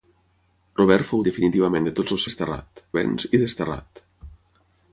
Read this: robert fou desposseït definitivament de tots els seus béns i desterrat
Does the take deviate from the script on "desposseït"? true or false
true